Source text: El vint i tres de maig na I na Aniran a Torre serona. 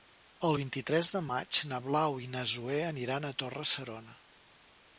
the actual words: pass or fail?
fail